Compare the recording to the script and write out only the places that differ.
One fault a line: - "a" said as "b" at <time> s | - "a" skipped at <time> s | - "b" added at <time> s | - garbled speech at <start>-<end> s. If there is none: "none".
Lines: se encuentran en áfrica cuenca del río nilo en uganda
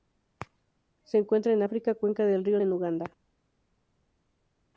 - "nilo" skipped at 2.6 s